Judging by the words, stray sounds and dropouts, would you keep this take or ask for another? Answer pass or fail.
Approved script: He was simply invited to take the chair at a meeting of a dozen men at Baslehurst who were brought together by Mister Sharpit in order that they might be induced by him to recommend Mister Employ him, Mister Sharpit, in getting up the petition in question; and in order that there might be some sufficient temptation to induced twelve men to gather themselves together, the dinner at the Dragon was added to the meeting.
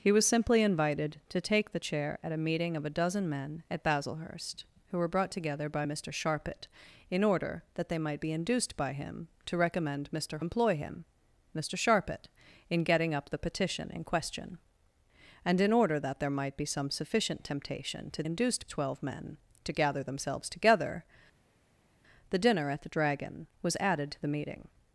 pass